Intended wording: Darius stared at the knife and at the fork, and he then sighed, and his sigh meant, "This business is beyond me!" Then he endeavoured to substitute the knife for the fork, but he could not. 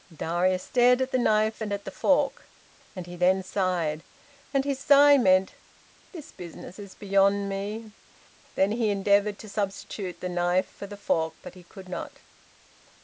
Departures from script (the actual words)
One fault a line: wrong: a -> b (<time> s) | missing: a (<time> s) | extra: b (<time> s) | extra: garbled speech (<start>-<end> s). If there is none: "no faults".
no faults